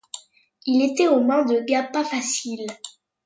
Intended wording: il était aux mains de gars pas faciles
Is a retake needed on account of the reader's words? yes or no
no